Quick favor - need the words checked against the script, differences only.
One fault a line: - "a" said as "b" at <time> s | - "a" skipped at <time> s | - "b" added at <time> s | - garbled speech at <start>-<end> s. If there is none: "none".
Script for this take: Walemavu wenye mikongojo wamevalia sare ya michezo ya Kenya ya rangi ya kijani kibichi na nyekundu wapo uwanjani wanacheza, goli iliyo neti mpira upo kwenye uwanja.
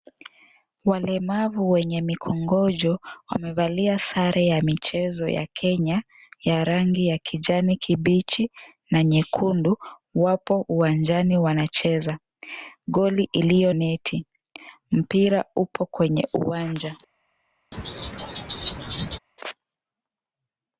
none